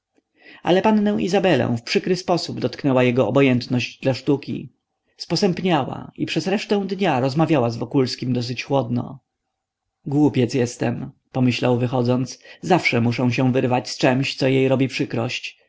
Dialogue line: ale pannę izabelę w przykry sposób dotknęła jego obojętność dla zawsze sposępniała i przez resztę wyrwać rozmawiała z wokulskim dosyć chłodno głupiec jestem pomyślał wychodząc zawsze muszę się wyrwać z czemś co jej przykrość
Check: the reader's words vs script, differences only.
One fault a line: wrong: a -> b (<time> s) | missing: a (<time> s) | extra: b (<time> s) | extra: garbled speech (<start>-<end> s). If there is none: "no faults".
wrong: zawsze -> sztuki (4.1 s)
wrong: wyrwać -> dnia (6.9 s)
extra: robi (14.7 s)